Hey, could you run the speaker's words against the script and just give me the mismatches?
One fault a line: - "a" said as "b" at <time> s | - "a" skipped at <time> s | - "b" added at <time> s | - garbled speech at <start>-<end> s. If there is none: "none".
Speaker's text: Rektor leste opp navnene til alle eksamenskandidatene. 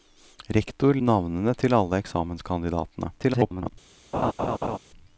- "leste opp" skipped at 1.0 s
- garbled speech at 3.2-3.7 s